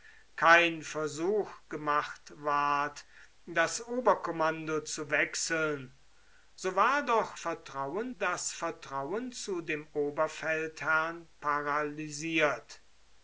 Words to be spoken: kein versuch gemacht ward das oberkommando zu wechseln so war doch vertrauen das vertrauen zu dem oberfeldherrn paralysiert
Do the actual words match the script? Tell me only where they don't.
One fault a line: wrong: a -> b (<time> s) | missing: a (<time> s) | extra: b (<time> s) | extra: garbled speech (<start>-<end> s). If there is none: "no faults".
no faults